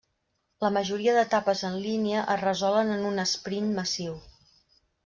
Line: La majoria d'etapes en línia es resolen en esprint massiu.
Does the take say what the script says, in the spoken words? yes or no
no